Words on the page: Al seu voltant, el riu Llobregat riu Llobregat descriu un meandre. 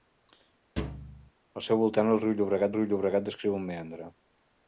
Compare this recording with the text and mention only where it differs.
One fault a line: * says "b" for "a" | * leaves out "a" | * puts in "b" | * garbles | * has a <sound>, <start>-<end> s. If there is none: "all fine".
* has a thud, 0.8-1.3 s